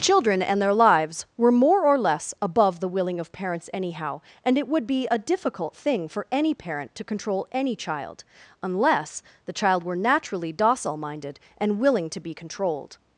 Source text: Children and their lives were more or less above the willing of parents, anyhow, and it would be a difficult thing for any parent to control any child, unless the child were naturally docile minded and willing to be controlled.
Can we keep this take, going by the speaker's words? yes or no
yes